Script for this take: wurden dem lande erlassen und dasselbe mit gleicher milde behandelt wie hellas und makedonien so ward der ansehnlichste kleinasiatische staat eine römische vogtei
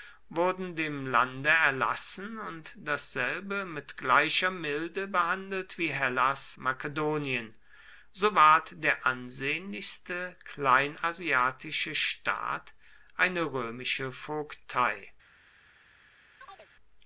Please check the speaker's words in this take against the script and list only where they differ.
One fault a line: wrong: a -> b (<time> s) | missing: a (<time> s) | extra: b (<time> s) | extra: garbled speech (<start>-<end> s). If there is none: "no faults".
missing: und (6.6 s)